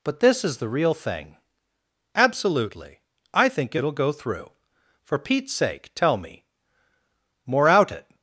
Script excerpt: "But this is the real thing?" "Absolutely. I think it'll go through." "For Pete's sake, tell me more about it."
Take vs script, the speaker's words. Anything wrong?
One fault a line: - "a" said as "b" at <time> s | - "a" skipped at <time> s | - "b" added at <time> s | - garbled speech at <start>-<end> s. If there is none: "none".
- "about" said as "out" at 7.7 s